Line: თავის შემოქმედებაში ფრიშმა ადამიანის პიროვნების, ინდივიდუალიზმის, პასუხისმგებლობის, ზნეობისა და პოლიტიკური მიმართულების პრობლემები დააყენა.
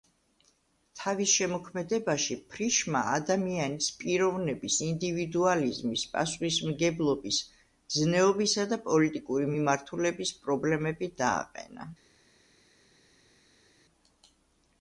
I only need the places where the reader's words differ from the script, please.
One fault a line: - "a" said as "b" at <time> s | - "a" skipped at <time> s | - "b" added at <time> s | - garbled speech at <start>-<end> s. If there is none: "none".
none